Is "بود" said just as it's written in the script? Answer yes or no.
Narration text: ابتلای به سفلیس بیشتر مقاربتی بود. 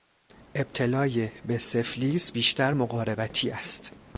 no